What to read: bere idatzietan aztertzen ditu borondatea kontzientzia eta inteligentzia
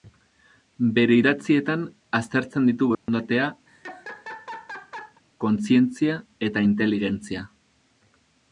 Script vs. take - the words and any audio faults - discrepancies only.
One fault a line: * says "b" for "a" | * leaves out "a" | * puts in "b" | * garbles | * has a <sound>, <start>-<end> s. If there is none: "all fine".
* has a dropout, 2.9-3.1 s
* has a laugh, 3.7-5.2 s